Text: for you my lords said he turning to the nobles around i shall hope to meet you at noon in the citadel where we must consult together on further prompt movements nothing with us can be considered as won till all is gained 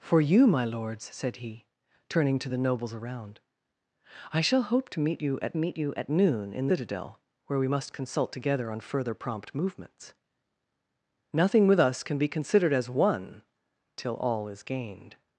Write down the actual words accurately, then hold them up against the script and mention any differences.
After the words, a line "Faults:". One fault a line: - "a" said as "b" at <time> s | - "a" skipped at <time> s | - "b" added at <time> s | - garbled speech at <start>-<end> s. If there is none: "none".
for you my lords said he turning to the nobles around i shall hope to meet you at meet you at noon in citadel where we must consult together on further prompt movements nothing with us can be considered as won till all is gained
Faults:
- "meet you at" added at 5.6 s
- "the" skipped at 6.7 s